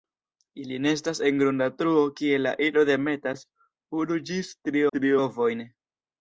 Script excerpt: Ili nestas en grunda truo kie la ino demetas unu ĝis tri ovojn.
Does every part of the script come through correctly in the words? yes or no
no